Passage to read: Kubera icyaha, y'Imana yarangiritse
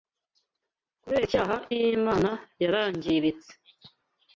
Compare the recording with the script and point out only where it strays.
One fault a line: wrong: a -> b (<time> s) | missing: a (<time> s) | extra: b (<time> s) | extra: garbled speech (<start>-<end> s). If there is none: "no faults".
no faults